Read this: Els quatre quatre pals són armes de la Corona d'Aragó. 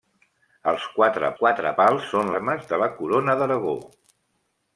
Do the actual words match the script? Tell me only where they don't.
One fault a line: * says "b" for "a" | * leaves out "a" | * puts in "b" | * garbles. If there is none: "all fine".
all fine